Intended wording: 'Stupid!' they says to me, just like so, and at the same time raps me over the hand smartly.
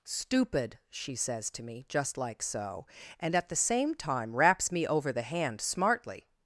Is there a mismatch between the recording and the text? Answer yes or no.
yes